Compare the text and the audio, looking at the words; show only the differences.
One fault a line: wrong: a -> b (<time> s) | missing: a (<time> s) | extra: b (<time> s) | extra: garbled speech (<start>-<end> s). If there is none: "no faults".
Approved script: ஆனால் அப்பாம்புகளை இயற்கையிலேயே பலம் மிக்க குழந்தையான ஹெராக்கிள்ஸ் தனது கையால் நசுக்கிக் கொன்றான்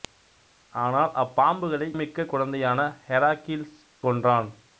missing: இயற்கையிலேயே பலம் (1.9 s)
missing: தனது கையால் நசுக்கிக் (3.8 s)